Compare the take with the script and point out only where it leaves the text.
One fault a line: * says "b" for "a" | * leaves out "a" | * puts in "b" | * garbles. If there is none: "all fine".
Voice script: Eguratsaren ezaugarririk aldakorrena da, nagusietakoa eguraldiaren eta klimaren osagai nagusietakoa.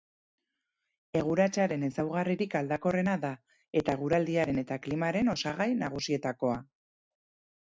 * says "eta" for "nagusietakoa"